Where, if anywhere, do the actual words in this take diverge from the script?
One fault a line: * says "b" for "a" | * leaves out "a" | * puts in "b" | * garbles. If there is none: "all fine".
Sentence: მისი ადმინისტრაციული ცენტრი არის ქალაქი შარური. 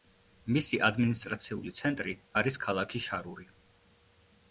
all fine